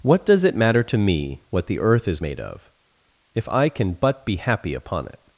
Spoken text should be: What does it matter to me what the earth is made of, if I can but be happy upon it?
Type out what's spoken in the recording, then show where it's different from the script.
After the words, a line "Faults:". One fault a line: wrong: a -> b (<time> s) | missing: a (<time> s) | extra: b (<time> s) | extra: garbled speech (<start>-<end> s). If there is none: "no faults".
What does it matter to me what the earth is made of, if I can but be happy upon it?
Faults:
no faults